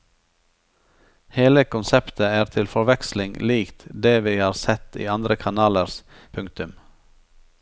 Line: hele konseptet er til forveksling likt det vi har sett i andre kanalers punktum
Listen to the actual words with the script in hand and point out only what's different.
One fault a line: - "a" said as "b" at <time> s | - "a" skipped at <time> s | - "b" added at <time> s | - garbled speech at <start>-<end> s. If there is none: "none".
none